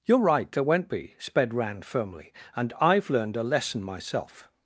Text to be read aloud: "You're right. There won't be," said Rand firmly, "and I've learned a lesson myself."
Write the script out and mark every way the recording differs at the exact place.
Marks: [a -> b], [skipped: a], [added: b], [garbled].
"You're right. There won't be," [said -> sped] Rand firmly, "and I've learned a lesson myself."